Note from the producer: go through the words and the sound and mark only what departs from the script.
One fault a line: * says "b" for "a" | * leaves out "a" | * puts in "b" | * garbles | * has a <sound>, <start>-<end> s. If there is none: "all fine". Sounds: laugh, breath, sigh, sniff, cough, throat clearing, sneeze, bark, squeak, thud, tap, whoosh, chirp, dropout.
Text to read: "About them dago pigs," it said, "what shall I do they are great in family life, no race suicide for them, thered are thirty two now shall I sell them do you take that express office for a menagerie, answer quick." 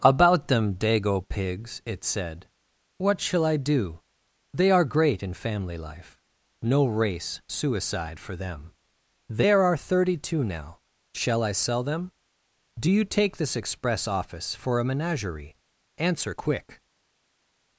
* says "there" for "thered"
* says "this" for "that"